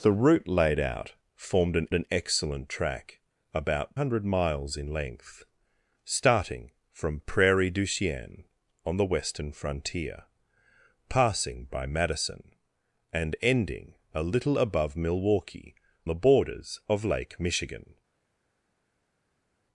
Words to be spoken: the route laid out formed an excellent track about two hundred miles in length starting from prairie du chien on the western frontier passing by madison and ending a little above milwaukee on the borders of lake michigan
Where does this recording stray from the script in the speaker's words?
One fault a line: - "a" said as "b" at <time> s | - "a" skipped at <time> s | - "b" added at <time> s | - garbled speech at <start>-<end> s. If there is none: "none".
- "an" added at 1.9 s
- "two" skipped at 4.0 s
- "on" skipped at 15.7 s